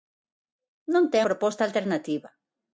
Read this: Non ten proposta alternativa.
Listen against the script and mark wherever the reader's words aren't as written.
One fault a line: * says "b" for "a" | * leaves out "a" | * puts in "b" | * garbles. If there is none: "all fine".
all fine